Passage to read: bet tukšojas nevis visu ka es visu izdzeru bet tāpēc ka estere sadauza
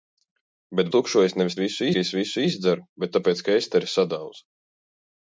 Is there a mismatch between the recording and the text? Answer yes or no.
no